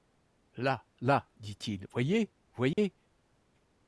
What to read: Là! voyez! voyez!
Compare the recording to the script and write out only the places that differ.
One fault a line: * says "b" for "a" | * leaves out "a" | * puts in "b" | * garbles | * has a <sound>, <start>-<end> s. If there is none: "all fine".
* puts in "là dit il"
* has a dropout, 2.7-2.8 s